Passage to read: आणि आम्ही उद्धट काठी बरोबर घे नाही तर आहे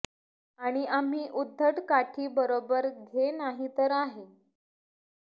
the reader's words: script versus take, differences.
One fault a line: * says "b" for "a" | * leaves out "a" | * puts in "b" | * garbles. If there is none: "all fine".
all fine